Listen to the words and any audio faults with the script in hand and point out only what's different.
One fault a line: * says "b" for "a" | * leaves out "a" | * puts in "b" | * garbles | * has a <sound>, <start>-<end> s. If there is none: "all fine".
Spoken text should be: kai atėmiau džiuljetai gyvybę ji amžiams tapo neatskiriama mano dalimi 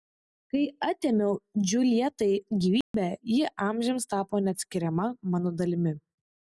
* has a dropout, 2.8-2.9 s